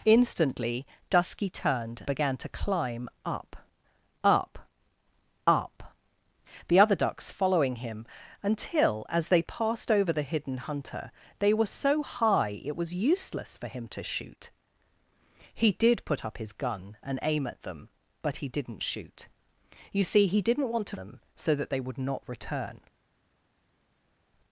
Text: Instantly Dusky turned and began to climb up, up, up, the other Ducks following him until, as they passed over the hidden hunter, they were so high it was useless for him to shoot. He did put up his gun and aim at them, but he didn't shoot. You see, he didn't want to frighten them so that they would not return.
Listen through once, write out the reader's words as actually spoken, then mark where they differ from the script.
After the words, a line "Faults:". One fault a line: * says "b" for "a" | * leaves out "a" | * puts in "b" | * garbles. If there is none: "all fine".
Instantly Dusky turned began to climb up, up, up, the other Ducks following him until, as they passed over the hidden hunter, they were so high it was useless for him to shoot. He did put up his gun and aim at them, but he didn't shoot. You see, he didn't want to them so that they would not return.
Faults:
* leaves out "and"
* leaves out "frighten"